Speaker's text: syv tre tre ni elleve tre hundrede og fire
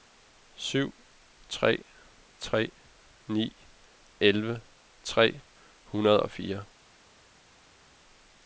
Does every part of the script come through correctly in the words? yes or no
yes